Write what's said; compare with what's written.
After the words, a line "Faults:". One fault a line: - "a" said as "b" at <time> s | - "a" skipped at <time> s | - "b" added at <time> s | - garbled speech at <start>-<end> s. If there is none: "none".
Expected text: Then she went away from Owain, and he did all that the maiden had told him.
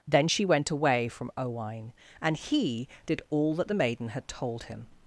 Then she went away from Owain, and he did all that the maiden had told him.
Faults:
none